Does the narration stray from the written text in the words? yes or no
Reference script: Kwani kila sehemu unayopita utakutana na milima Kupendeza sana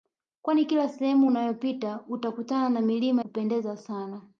no